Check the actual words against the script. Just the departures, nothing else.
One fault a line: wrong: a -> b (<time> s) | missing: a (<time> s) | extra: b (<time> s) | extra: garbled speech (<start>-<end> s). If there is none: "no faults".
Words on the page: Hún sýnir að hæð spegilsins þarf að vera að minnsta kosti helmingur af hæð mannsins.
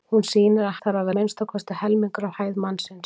missing: hæð spegilsins (0.8 s)
missing: vera (1.1 s)